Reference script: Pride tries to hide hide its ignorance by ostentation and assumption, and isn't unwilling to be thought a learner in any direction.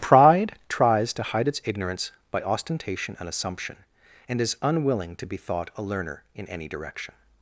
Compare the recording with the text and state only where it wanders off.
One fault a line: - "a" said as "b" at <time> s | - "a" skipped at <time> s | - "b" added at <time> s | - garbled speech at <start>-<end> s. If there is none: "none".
- "hide" skipped at 1.5 s
- "isn't" said as "is" at 4.4 s